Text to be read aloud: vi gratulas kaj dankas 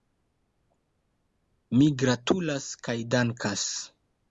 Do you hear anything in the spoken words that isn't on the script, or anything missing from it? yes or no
yes